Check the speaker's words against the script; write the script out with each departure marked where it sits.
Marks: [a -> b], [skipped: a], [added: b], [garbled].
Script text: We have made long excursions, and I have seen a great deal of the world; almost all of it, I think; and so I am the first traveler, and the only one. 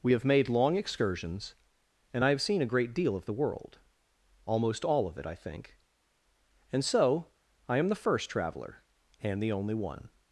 We have made long excursions, and I have seen a great deal of the world; almost all of it, I think; and so I am the first traveler, and the only one.